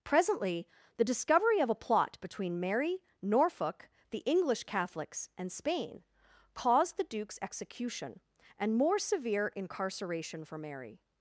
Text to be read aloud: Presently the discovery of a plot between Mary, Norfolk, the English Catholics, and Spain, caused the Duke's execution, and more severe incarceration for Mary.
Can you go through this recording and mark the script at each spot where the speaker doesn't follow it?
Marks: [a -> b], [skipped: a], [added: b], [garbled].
Presently the discovery of a plot between Mary, Norfolk, the English Catholics, and Spain, caused the Duke's execution, and more severe incarceration for Mary.